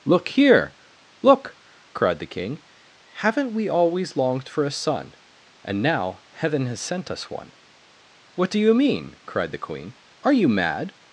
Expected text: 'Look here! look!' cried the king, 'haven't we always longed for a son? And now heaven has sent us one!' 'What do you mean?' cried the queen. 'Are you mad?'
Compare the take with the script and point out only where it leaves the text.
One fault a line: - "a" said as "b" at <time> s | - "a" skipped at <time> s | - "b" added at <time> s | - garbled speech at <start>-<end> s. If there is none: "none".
none